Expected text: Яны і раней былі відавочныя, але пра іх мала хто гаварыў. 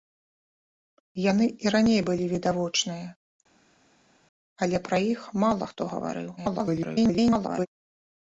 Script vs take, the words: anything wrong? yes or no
yes